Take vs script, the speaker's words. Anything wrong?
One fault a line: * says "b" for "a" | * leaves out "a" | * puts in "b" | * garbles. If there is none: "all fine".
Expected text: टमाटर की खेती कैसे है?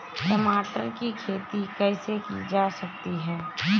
* puts in "की जा सकती"